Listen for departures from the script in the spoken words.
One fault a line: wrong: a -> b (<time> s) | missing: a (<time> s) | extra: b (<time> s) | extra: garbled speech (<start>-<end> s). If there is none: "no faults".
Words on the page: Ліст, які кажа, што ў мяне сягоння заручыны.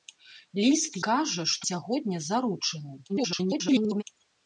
missing: які (1.0 s)
missing: ў мяне (1.6 s)
extra: garbled speech (3.1-4.0 s)